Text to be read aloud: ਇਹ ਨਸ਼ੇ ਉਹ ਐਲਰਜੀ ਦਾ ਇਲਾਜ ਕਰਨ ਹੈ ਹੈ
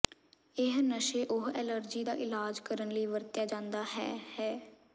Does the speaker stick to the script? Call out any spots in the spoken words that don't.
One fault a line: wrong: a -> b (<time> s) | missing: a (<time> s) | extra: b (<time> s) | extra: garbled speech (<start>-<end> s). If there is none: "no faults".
extra: ਲਈ ਵਰਤਿਆ ਜਾਦਾ (2.9 s)